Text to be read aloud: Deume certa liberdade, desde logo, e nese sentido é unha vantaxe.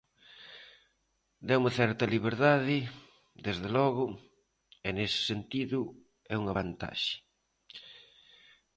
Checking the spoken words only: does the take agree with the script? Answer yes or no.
yes